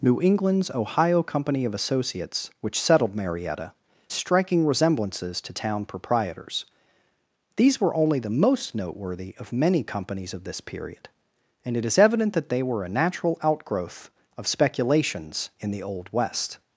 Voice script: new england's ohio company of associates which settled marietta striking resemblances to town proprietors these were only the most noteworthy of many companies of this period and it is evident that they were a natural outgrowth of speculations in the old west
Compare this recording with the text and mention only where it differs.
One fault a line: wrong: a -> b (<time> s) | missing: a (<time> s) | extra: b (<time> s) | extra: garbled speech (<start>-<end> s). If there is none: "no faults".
no faults